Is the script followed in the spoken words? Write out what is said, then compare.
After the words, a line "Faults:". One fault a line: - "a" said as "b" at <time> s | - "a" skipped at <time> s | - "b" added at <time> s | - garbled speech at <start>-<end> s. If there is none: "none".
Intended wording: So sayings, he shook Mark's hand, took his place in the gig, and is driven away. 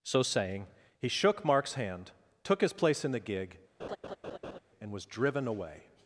So saying, he shook Mark's hand, took his place in the gig, and was driven away.
Faults:
- "sayings" said as "saying" at 0.2 s
- "is" said as "was" at 4.9 s